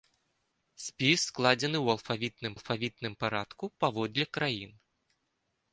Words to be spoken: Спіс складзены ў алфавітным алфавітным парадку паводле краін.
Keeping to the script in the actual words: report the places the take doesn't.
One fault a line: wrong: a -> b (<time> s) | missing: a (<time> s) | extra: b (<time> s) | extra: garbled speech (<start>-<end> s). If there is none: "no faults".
no faults